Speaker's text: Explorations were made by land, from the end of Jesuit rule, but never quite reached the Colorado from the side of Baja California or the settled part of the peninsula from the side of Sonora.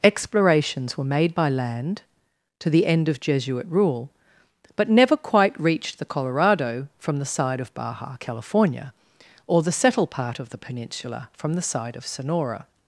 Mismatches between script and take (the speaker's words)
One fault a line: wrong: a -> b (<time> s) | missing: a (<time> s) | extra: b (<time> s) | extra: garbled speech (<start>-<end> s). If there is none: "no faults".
wrong: from -> to (2.6 s)